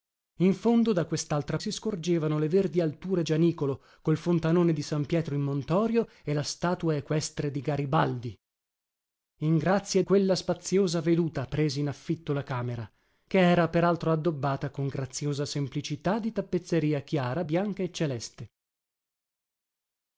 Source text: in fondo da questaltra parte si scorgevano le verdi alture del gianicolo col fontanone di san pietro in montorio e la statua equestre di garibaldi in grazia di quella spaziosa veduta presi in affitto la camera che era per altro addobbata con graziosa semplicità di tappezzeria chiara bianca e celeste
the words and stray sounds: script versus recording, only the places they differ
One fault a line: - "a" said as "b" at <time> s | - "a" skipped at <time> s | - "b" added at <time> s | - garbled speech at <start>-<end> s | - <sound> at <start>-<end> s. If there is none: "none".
- "parte" skipped at 1.6 s
- "del" skipped at 3.2 s
- "di" skipped at 10.0 s